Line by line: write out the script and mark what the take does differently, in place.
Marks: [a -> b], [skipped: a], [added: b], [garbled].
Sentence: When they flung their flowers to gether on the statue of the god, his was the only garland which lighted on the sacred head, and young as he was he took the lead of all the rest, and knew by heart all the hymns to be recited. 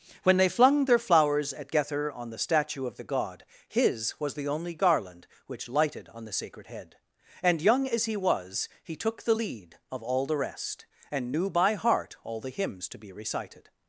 When they flung their flowers [to -> at] gether on the statue of the god, his was the only garland which lighted on the sacred head, and young as he was he took the lead of all the rest, and knew by heart all the hymns to be recited.